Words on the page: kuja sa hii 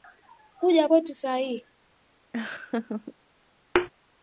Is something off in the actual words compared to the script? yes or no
yes